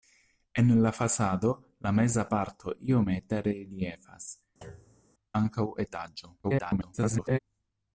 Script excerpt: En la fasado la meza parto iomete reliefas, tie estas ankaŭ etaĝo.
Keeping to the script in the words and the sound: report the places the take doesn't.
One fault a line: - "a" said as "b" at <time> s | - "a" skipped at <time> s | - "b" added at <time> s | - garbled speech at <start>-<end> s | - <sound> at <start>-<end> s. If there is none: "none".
- "tie estas" skipped at 4.3 s
- thud at 4.6-5.1 s
- garbled speech at 6.4-7.4 s